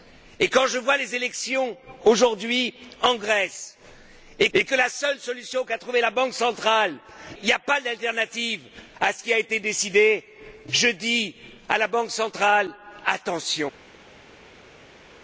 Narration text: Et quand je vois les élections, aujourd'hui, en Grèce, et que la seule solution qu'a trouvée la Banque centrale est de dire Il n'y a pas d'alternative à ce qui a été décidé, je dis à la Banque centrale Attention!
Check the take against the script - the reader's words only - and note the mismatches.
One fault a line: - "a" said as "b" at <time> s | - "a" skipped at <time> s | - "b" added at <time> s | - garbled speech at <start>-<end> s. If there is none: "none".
- "et" added at 4.5 s
- "est de dire" skipped at 6.9 s